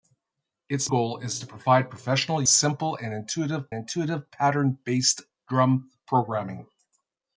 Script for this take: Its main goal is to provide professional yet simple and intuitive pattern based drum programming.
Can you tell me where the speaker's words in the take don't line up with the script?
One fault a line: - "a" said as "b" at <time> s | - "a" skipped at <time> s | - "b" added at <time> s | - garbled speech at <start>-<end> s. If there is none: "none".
- "main" skipped at 0.9 s
- "yet" skipped at 2.4 s
- "intuitive" added at 3.7 s